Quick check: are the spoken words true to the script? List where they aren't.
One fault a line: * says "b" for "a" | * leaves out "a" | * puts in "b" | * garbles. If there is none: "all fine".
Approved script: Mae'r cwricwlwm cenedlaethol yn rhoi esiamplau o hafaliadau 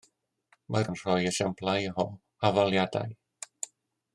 * leaves out "cwricwlwm cenedlaethol"